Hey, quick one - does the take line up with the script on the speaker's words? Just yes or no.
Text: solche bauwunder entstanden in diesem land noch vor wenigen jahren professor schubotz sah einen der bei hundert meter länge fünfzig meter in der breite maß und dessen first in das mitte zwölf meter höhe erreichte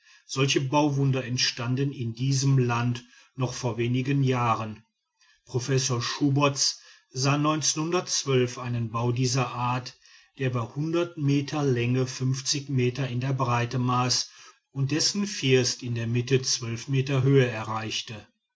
no